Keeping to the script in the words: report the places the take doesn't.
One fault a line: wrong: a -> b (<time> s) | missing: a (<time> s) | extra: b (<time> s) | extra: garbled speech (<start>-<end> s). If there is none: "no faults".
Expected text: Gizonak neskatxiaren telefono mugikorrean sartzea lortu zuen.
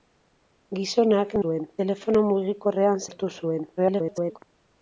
wrong: neskatxiaren -> zuen (1.4 s)
missing: sartzea (3.1 s)
extra: garbled speech (3.8-4.4 s)